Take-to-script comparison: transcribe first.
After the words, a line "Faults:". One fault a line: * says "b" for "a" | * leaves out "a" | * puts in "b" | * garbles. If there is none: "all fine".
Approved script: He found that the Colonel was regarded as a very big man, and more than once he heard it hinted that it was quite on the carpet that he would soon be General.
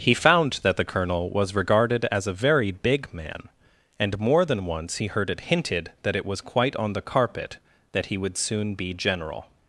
He found that the Colonel was regarded as a very big man, and more than once he heard it hinted that it was quite on the carpet that he would soon be General.
Faults:
all fine